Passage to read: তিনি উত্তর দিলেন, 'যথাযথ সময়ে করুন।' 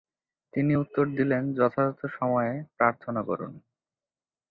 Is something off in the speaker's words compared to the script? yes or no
yes